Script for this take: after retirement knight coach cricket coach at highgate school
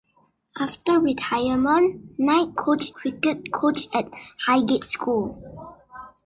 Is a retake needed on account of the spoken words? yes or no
no